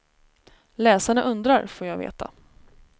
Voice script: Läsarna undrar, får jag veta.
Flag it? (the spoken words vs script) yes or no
no